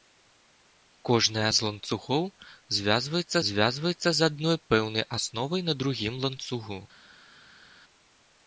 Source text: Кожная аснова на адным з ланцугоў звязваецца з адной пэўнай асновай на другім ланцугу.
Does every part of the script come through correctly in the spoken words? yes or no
no